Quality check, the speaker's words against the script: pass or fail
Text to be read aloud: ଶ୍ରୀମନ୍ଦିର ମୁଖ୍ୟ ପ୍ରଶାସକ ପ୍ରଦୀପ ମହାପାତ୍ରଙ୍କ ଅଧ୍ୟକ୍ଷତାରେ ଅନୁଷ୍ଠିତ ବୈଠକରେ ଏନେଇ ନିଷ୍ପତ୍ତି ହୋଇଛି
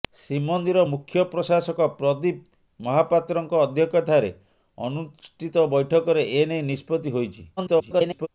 fail